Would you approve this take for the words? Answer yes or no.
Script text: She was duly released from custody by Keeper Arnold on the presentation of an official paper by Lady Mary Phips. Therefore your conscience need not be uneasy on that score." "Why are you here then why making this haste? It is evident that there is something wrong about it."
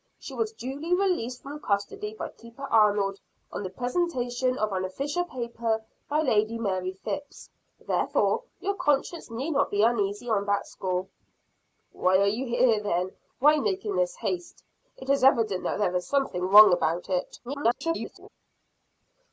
no